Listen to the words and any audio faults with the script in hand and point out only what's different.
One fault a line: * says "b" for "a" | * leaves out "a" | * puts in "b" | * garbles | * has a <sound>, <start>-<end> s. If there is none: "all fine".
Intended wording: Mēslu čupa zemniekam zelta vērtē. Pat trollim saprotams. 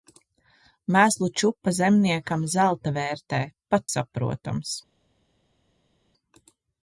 * leaves out "trollim"